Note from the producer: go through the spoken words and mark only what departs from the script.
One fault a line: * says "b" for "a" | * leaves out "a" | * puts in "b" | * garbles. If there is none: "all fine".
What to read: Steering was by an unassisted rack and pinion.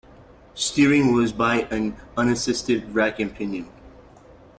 all fine